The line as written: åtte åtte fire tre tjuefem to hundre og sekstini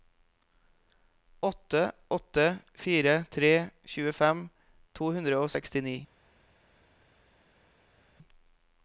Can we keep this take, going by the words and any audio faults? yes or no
yes